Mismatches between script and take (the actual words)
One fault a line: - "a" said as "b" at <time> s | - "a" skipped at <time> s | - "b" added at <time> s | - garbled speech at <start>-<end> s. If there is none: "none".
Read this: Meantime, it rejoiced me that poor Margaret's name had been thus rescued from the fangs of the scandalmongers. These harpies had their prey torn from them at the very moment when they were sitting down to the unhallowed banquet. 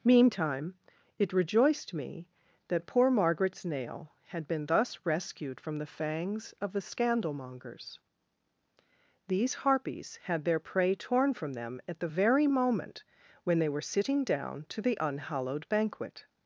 - "name" said as "nail" at 3.6 s